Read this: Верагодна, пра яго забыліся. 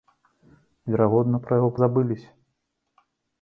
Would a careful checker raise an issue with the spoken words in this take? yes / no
no